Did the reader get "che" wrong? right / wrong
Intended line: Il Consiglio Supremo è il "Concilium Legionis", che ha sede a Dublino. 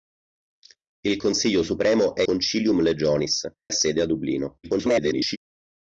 wrong